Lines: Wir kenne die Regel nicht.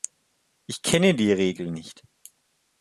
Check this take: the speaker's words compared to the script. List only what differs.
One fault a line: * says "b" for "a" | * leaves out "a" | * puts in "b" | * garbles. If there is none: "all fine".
* says "Ich" for "Wir"